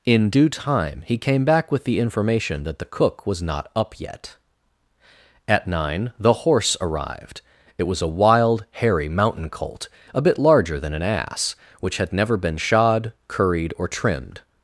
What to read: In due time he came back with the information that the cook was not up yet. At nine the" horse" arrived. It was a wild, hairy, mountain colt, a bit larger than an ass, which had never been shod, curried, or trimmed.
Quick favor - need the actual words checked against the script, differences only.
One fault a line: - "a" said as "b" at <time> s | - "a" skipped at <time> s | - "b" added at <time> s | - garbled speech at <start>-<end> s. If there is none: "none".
none